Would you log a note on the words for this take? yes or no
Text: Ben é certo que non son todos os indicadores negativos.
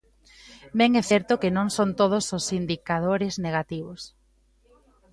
no